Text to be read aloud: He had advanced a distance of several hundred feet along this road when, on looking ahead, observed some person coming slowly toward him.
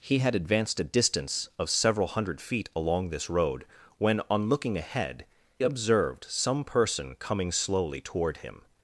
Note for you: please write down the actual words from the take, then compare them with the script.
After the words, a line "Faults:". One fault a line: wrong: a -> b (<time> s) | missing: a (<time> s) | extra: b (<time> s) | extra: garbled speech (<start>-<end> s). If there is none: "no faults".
He had advanced a distance of several hundred feet along this road when, on looking ahead, observed some person coming slowly toward him.
Faults:
no faults